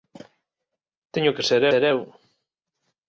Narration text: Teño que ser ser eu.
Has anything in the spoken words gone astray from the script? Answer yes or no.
no